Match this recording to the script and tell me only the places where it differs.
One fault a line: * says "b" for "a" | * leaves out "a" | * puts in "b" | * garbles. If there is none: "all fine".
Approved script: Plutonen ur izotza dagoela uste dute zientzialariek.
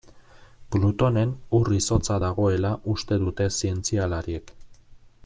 all fine